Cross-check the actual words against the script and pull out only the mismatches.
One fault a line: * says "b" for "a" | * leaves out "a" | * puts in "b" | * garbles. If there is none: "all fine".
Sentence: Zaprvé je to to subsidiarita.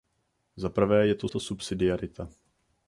all fine